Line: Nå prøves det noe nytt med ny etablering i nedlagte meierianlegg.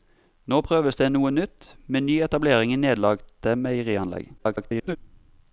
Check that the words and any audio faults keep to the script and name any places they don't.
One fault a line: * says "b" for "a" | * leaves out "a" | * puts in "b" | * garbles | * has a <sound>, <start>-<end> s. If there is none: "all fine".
* garbles